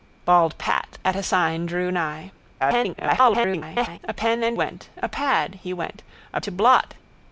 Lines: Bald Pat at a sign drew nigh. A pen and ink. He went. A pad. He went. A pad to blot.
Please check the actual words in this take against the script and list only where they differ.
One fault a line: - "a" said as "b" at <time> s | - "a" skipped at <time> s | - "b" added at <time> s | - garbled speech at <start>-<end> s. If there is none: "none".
- garbled speech at 2.6-4.0 s
- "ink He" skipped at 4.6 s
- "pad" skipped at 6.4 s